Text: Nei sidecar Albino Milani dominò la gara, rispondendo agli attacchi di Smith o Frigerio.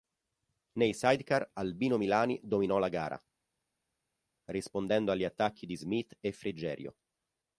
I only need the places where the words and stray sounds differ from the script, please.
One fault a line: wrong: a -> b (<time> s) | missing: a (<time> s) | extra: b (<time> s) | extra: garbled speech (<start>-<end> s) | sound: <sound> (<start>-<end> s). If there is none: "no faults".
wrong: o -> e (6.2 s)